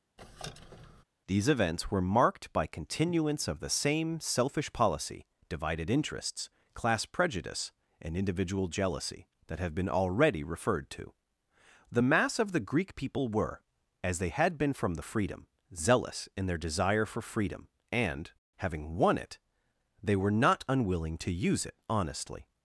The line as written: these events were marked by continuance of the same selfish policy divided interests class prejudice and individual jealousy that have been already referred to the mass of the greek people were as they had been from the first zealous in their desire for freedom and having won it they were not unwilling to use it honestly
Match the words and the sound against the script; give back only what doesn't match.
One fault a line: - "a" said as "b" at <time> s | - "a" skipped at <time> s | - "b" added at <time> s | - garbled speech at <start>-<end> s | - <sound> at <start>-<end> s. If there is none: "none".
- squeak at 0.2-1.0 s
- "first" said as "freedom" at 15.0 s